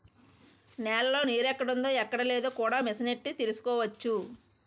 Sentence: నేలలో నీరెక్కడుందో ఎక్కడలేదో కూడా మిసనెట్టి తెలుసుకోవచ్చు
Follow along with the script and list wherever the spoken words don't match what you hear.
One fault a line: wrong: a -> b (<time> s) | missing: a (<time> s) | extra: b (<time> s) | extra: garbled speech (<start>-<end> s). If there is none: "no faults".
no faults